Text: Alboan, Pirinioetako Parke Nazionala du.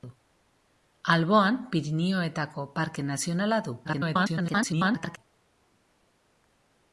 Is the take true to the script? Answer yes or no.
no